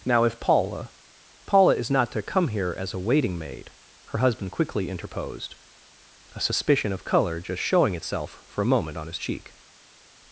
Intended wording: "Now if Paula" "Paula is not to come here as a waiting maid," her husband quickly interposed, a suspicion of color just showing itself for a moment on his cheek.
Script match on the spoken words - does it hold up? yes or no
yes